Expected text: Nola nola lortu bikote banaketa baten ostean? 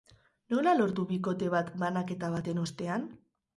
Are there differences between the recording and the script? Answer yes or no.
yes